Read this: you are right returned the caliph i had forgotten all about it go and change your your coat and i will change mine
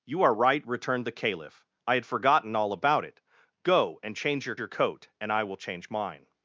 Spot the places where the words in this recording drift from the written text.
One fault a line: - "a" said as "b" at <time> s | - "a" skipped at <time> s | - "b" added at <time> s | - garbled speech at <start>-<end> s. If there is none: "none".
none